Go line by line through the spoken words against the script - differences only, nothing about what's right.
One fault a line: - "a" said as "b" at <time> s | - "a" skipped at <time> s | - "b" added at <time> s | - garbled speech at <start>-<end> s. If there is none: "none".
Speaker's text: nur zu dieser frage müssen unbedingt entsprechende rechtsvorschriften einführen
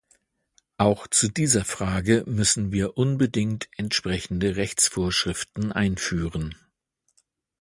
- "nur" said as "auch" at 0.8 s
- "wir" added at 2.7 s